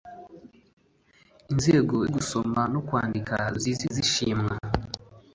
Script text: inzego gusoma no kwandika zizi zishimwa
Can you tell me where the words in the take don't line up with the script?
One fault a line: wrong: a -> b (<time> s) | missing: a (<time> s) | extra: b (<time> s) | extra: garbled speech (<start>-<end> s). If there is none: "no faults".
no faults